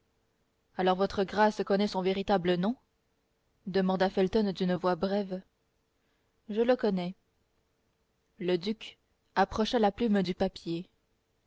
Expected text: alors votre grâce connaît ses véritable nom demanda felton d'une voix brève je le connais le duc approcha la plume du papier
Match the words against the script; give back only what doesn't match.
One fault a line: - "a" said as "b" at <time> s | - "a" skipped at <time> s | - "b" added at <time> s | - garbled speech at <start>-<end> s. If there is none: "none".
- "ses" said as "son" at 1.9 s